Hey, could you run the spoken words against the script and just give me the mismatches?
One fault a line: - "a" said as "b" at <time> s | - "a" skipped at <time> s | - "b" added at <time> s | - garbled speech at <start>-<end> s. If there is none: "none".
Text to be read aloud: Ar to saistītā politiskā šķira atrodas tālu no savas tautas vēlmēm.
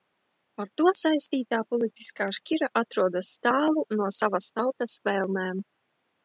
none